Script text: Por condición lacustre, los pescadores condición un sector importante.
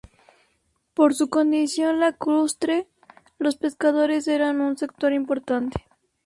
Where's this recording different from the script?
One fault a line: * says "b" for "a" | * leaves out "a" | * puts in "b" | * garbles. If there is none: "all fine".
* puts in "su"
* says "eran" for "condición"